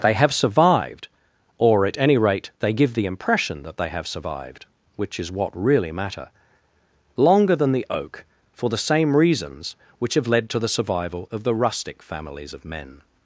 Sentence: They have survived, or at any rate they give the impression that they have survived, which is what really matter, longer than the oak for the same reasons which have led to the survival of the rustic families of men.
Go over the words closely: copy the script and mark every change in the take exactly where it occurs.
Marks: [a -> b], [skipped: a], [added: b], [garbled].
They have survived, or at any rate they give the impression that they have survived, which is what really matter, longer than the oak for the same reasons which have led to the survival of the rustic families of men.